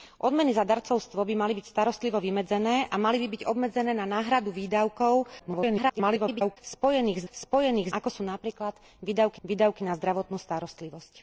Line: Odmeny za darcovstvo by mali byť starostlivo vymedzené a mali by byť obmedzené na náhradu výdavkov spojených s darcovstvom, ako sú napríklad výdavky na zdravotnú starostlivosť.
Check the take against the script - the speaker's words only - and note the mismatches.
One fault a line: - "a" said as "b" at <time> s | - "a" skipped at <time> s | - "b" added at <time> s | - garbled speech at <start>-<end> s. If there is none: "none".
- garbled speech at 5.4-6.6 s
- "darcovstvom" said as "spojených" at 7.3 s
- "výdavky" added at 9.4 s